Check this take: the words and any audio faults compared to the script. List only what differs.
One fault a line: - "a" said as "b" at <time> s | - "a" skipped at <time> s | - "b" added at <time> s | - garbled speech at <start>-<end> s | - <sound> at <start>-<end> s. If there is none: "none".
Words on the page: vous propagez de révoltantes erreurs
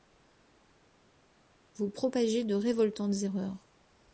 none